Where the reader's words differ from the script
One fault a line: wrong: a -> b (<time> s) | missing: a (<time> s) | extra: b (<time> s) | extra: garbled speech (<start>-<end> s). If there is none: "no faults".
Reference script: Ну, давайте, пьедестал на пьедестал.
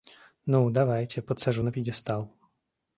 wrong: пьедестал -> подсажу (1.2 s)